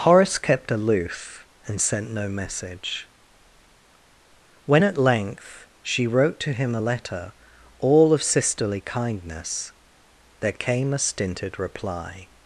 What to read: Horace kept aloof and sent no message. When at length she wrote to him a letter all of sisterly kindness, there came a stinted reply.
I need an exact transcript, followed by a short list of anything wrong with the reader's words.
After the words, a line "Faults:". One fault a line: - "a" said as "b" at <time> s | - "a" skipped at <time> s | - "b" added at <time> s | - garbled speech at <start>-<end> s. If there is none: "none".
Horace kept aloof and sent no message. When at length she wrote to him a letter all of sisterly kindness, there came a stinted reply.
Faults:
none